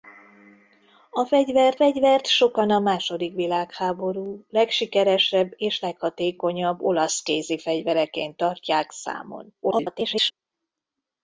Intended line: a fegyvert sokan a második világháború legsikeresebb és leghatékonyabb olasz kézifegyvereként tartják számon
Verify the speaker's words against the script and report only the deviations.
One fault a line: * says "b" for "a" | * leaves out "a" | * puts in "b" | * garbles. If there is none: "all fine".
* puts in "fegyvert"
* garbles